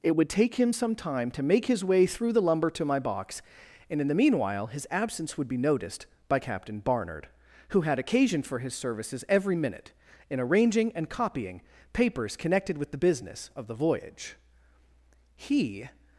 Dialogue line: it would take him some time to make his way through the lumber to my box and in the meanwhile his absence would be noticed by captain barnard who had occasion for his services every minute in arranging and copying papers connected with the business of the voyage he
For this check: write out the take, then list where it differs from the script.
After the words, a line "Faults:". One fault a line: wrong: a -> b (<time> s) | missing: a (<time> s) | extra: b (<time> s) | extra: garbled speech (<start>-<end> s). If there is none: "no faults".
it would take him some time to make his way through the lumber to my box and in the meanwhile his absence would be noticed by captain barnard who had occasion for his services every minute in arranging and copying papers connected with the business of the voyage he
Faults:
no faults